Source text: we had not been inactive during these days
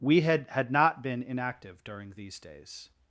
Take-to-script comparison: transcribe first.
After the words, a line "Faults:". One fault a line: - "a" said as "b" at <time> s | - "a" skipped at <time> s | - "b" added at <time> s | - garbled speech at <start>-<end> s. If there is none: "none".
we had had not been inactive during these days
Faults:
- "had" added at 0.5 s